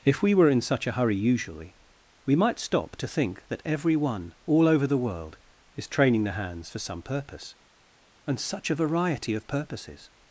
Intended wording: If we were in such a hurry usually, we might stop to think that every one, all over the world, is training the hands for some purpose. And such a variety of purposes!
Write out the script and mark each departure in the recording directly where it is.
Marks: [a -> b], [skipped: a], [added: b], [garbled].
If we were in such a hurry usually, we might stop to think that every one, all over the world, is training the hands for some purpose. And such a variety of purposes!